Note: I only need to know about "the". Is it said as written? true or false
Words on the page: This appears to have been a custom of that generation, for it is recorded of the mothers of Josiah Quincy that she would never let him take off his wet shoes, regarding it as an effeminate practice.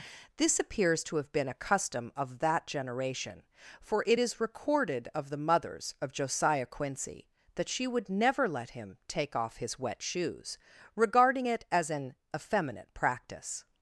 true